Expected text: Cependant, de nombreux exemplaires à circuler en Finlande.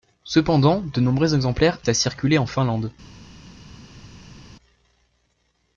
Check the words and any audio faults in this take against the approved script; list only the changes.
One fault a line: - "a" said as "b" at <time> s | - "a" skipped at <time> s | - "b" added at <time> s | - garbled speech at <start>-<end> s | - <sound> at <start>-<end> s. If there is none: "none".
none